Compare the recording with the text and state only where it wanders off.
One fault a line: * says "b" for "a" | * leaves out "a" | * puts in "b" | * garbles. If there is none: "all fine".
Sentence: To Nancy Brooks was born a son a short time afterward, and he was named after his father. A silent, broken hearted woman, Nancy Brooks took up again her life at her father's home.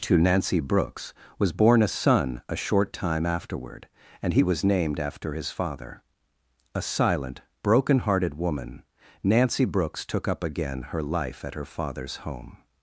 all fine